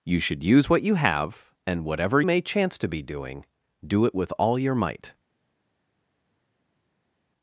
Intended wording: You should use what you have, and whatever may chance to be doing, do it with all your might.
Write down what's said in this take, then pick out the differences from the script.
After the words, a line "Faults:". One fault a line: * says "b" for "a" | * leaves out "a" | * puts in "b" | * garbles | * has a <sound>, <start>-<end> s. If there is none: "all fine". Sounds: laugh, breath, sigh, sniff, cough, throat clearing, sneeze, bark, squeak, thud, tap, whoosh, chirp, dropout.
You should use what you have, and whatever may chance to be doing, do it with all your might.
Faults:
all fine